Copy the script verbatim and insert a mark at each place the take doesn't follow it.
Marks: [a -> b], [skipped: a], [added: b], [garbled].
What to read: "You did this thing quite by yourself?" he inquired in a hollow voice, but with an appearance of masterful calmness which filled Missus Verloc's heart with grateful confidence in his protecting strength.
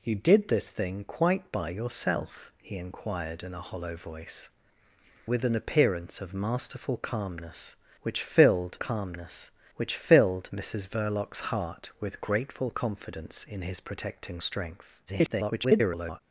"You did this thing quite by yourself?" he inquired in a hollow voice, [skipped: but] with an appearance of masterful calmness which filled [added: calmness which filled] Missus Verloc's heart with grateful confidence in his protecting strength. [garbled]